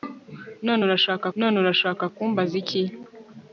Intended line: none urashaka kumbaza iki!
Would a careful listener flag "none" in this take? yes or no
no